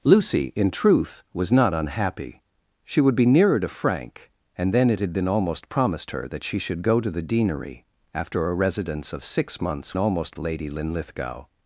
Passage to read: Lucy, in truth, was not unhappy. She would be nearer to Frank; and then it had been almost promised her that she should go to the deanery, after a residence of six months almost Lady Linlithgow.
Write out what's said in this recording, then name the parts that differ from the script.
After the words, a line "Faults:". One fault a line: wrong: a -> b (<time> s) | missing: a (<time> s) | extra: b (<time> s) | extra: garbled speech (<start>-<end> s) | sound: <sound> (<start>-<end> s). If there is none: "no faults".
Lucy, in truth, was not unhappy. She would be nearer to Frank; and then it had been almost promised her that she should go to the deanery, after a residence of six months almost Lady Linlithgow.
Faults:
no faults